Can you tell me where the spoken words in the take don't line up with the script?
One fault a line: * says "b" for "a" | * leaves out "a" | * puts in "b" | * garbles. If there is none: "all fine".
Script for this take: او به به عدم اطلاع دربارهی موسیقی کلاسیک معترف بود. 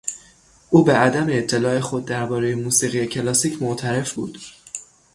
* leaves out "به"
* puts in "خود"